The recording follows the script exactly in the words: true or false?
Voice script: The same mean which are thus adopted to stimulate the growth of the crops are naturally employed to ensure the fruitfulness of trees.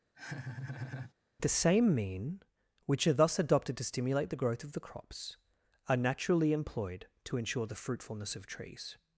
true